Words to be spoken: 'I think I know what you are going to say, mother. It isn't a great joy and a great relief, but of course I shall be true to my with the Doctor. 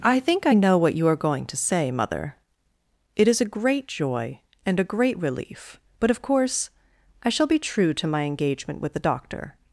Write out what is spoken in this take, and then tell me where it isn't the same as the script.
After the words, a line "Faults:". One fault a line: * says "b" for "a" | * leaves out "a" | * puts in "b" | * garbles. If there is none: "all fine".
'I think I know what you are going to say, mother. It is a great joy and a great relief, but of course I shall be true to my engagement with the Doctor.
Faults:
* says "is" for "isn't"
* puts in "engagement"